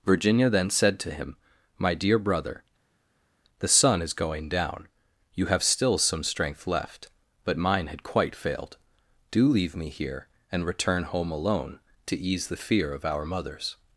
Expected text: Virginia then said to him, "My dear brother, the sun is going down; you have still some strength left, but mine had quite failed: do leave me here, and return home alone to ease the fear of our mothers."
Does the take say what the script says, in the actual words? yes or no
yes